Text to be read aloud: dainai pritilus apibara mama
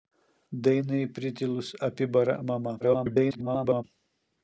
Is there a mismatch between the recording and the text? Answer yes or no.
yes